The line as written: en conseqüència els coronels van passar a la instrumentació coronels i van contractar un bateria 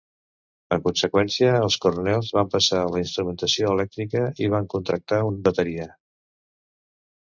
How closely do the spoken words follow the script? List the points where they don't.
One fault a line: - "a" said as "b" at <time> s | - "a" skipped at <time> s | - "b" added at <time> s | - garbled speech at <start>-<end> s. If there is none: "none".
- "coronels" said as "elèctrica" at 3.7 s